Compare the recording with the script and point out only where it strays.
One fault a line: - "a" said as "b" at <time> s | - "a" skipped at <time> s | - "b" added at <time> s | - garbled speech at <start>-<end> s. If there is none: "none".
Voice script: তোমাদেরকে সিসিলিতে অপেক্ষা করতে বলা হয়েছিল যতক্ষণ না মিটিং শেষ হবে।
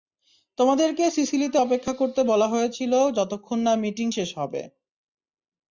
none